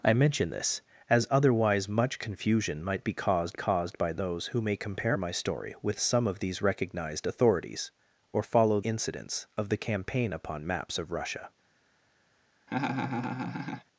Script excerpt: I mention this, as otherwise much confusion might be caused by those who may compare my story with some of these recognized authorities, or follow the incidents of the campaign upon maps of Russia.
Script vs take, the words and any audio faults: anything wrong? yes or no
yes